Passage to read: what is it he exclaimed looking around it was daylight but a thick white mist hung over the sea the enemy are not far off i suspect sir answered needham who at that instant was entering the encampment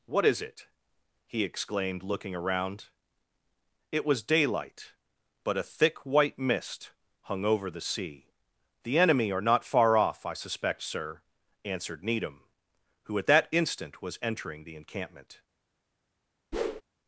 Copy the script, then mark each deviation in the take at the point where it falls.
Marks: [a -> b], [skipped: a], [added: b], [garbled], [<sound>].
what is it he exclaimed looking around it was daylight but a thick white mist hung over the sea the enemy are not far off i suspect sir answered needham who at that instant was entering the encampment [whoosh]